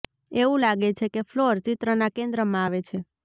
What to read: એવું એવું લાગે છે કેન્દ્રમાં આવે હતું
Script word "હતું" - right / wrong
wrong